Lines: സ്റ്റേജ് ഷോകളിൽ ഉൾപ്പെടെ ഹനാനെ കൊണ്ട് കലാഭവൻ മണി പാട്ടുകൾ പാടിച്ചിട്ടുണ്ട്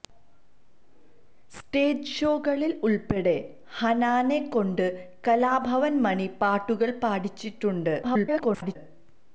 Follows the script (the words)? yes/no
no